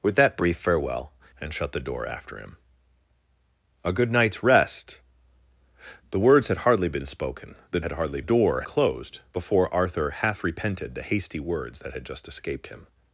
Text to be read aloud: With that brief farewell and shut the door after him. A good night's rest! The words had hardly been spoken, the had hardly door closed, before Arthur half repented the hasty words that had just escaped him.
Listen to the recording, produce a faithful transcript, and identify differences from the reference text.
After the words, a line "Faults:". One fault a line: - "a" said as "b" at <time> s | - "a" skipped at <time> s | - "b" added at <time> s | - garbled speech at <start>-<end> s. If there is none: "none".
With that brief farewell and shut the door after him. A good night's rest! The words had hardly been spoken, the had hardly door closed, before Arthur half repented the hasty words that had just escaped him.
Faults:
none